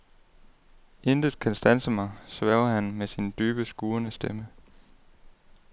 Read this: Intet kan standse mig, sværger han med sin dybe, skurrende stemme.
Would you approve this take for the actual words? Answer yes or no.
yes